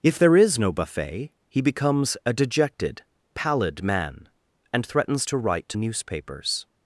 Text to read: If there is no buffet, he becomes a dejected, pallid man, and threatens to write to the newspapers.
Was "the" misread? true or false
true